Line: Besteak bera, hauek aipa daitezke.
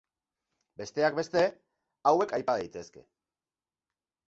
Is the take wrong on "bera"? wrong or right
wrong